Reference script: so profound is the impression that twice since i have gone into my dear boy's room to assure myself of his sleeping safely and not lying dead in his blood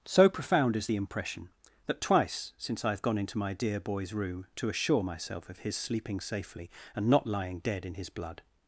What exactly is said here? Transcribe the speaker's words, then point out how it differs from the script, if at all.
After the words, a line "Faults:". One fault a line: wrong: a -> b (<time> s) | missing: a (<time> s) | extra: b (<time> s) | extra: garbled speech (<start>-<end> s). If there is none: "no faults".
so profound is the impression that twice since i have gone into my dear boy's room to assure myself of his sleeping safely and not lying dead in his blood
Faults:
no faults